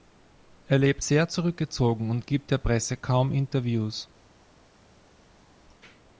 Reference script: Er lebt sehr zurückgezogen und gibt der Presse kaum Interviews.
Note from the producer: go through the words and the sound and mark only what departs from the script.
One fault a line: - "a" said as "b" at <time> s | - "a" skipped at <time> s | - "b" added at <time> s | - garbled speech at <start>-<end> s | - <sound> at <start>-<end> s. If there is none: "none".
none